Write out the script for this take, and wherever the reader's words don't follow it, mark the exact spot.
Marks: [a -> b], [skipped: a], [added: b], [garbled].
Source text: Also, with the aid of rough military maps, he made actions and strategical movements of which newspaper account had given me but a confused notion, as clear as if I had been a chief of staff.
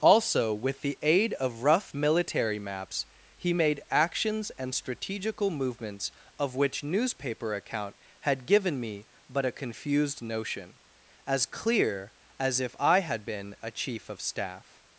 Also, with the aid of rough military maps, he made actions and strategical movements of which newspaper account had given me but a confused notion, as clear as if I had been a chief of staff.